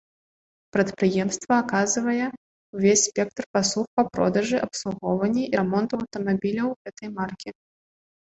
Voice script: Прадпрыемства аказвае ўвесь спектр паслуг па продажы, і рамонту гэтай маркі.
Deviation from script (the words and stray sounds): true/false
true